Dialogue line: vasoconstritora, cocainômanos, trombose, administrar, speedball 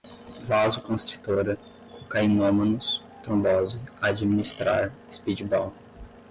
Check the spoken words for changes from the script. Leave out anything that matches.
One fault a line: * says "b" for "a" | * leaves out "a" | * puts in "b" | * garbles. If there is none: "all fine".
all fine